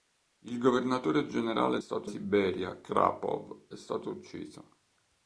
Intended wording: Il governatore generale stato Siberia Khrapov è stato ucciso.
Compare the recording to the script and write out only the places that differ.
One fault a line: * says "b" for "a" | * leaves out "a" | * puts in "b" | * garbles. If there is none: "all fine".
all fine